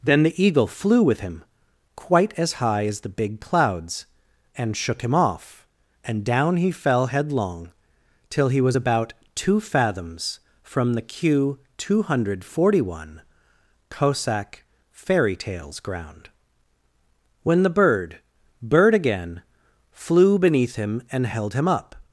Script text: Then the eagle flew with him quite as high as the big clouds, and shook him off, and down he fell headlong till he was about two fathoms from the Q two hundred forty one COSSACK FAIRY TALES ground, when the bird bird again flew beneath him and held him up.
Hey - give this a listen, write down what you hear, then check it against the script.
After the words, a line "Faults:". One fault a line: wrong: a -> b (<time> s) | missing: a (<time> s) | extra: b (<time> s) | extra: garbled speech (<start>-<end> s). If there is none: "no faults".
Then the eagle flew with him quite as high as the big clouds, and shook him off, and down he fell headlong till he was about two fathoms from the Q two hundred forty one COSSACK FAIRY TALES ground, when the bird bird again flew beneath him and held him up.
Faults:
no faults